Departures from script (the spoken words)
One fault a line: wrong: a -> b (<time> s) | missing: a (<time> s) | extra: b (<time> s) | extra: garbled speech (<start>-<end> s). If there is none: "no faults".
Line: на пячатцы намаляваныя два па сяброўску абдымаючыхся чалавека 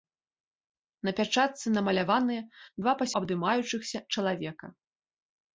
missing: сяброўску (3.1 s)